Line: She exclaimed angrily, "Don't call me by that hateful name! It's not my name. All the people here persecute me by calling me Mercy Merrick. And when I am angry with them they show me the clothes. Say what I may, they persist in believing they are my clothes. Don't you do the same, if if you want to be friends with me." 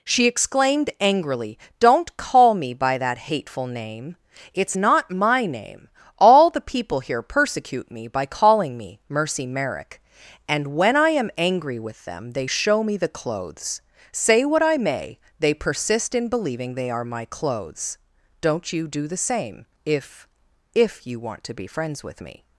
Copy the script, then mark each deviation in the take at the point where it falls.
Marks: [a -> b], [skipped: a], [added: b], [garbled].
She exclaimed angrily, "Don't call me by that hateful name! It's not my name. All the people here persecute me by calling me Mercy Merrick. And when I am angry with them they show me the clothes. Say what I may, they persist in believing they are my clothes. Don't you do the same, if if you want to be friends with me."